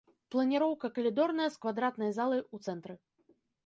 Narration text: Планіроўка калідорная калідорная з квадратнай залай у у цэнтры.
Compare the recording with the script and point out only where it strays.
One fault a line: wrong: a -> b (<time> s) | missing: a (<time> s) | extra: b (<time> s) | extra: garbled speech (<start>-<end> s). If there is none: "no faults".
missing: калідорная (1.5 s)
missing: у (2.7 s)